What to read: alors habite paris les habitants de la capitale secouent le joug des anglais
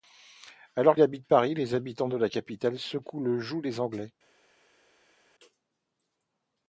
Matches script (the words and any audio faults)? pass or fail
pass